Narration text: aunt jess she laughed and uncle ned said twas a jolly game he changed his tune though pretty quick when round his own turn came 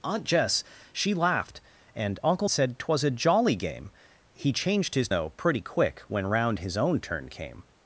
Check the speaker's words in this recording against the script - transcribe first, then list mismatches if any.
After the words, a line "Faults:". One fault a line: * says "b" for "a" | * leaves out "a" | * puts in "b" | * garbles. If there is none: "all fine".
aunt jess she laughed and uncle said twas a jolly game he changed his though pretty quick when round his own turn came
Faults:
* leaves out "ned"
* leaves out "tune"